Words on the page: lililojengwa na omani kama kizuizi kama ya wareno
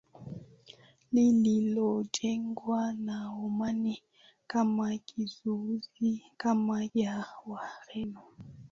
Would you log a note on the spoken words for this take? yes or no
no